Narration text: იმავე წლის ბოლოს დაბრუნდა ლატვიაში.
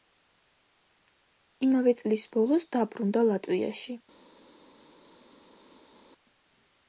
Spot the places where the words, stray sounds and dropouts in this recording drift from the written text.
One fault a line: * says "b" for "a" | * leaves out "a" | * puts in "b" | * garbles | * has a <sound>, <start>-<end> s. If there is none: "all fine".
all fine